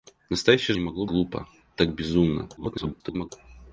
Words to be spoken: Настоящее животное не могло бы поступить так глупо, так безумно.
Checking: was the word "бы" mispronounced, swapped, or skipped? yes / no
yes